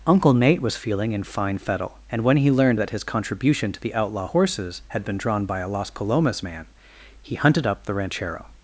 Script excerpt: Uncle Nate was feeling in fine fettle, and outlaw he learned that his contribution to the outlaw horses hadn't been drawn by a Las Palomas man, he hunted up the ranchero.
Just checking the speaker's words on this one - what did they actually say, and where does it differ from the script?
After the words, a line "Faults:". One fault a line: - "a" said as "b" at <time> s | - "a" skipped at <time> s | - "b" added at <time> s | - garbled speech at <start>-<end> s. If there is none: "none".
Uncle Nate was feeling in fine fettle, and when he learned that his contribution to the outlaw horses had been drawn by a Las Palomas man, he hunted up the ranchero.
Faults:
- "outlaw" said as "when" at 2.2 s
- "hadn't" said as "had" at 4.9 s